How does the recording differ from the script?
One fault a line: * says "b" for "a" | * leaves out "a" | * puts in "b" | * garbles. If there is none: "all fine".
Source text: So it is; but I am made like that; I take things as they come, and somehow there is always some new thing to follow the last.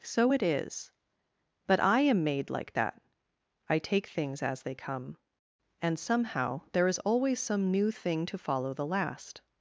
all fine